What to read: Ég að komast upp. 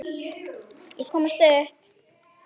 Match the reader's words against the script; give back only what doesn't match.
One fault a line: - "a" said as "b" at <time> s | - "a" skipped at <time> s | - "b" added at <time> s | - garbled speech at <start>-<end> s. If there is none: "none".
none